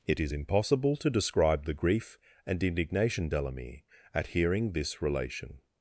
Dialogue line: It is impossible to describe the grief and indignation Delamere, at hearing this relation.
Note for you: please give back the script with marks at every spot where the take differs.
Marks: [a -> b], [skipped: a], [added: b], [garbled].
It is impossible to describe the grief and indignation Delamere, at hearing this relation.